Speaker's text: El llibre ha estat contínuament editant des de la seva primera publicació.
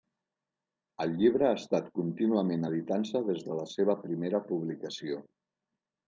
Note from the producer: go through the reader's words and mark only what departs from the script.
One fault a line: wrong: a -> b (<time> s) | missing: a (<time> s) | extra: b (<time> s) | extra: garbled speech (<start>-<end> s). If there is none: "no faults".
extra: se (3.1 s)